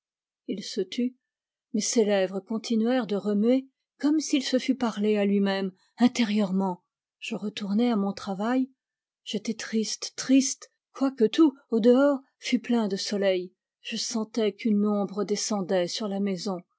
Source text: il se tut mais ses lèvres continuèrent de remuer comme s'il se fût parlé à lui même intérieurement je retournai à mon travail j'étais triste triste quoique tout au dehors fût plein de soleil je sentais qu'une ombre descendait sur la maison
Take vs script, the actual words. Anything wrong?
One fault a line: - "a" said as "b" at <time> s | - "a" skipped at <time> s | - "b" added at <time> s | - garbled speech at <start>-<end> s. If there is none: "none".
none